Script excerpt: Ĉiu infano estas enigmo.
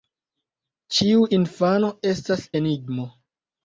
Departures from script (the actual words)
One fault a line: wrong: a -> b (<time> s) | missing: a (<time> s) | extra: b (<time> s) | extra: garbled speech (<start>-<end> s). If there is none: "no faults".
no faults